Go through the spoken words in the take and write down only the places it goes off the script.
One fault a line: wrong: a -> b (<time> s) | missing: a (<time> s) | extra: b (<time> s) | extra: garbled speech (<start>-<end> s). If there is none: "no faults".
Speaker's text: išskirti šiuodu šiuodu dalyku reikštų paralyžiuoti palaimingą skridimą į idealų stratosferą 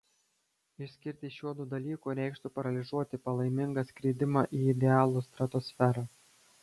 missing: šiuodu (1.7 s)